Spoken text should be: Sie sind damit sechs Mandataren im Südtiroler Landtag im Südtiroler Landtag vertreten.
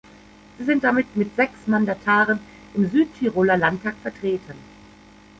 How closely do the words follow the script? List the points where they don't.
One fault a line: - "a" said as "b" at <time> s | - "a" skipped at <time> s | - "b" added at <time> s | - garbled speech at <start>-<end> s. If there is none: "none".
- "mit" added at 1.2 s
- "im Südtiroler Landtag" skipped at 3.9 s